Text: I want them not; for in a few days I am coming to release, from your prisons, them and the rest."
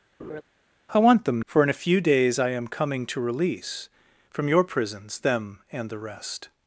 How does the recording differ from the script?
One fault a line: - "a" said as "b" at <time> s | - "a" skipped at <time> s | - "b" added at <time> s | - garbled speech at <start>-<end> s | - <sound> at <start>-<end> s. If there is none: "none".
- laugh at 0.2-0.4 s
- "not" skipped at 1.4 s